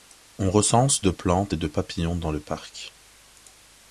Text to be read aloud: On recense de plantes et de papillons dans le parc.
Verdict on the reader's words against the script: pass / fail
pass